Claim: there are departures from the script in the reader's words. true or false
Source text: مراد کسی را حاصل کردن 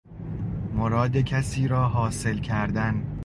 false